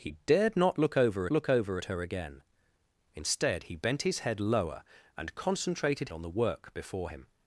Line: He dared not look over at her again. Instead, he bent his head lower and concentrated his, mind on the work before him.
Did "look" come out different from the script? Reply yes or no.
no